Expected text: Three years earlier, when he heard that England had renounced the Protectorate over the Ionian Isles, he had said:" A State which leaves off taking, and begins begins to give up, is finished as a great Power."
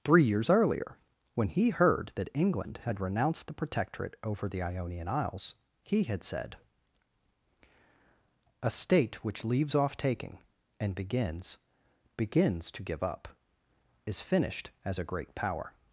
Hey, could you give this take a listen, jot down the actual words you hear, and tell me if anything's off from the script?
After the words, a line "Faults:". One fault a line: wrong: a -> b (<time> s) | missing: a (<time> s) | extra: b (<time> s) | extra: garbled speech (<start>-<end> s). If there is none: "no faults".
Three years earlier, when he heard that England had renounced the Protectorate over the Ionian Isles, he had said:" A State which leaves off taking, and begins begins to give up, is finished as a great Power."
Faults:
no faults